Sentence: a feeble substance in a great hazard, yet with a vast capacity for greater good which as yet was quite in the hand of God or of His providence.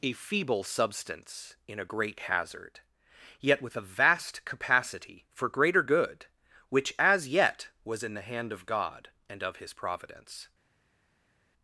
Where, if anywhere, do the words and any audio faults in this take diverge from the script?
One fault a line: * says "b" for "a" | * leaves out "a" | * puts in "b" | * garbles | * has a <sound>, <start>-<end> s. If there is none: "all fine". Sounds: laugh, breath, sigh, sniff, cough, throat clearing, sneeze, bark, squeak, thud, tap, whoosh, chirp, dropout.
* leaves out "quite"
* says "and" for "or"